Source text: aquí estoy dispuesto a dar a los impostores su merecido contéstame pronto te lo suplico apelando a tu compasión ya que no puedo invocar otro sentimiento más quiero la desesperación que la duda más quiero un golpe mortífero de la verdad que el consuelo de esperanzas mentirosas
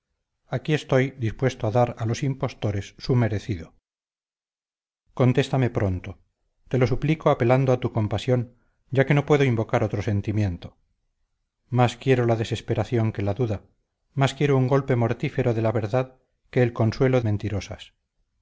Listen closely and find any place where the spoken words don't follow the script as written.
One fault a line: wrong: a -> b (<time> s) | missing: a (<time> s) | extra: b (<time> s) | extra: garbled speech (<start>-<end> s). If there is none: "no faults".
missing: de esperanzas (17.2 s)